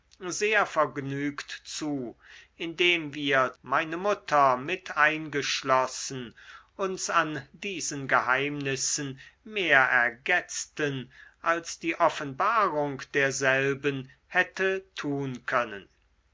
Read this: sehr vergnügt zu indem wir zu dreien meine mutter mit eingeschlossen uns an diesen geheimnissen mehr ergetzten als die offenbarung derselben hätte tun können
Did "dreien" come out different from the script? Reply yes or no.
yes